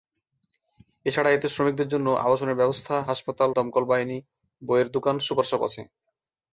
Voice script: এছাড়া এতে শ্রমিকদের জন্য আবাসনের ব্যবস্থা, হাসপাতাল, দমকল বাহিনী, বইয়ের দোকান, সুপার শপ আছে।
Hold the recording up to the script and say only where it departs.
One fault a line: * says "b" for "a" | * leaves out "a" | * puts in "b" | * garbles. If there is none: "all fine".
all fine